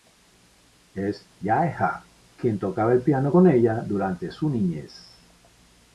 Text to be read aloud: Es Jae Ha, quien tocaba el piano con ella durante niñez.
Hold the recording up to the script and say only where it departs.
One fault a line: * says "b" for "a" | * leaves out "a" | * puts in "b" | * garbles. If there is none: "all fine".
* puts in "su"